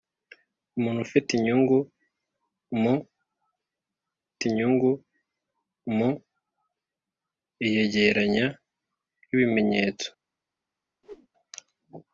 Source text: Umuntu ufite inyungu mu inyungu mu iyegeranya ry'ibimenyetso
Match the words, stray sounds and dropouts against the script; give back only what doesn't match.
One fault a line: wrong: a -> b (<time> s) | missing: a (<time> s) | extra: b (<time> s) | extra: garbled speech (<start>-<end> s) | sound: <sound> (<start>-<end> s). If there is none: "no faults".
sound: whoosh (11.0-11.3 s)